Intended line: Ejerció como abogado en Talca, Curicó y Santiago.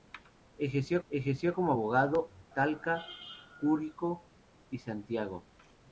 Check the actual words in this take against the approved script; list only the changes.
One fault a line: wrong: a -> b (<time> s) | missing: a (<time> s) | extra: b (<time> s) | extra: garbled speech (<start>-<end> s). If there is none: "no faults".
extra: ejerció (1.1 s)
missing: en (2.3 s)